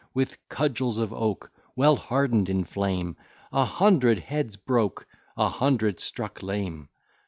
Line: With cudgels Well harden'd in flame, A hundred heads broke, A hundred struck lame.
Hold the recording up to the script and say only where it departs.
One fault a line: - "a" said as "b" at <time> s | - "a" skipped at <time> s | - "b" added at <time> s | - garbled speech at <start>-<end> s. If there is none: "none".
- "of oak" added at 1.0 s